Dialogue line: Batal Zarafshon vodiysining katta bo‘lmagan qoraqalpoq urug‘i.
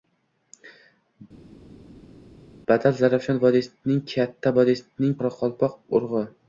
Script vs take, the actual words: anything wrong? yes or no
yes